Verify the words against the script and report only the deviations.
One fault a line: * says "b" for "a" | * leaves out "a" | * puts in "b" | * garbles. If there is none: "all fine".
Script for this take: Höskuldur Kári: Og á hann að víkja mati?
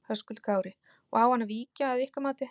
* puts in "að ykkar"